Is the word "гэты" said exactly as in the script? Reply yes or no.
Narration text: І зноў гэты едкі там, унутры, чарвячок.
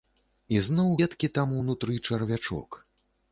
no